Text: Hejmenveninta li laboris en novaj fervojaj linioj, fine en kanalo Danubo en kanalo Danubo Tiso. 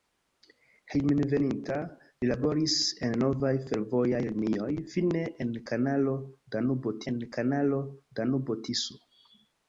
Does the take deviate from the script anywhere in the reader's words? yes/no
no